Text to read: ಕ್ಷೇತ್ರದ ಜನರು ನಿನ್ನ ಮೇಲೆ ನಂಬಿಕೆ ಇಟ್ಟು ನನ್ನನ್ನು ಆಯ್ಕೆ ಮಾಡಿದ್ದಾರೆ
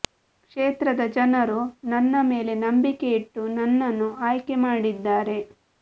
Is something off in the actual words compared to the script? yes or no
yes